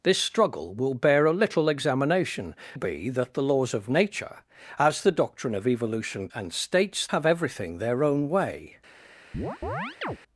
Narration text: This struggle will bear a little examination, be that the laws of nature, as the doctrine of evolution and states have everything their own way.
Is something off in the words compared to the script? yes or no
no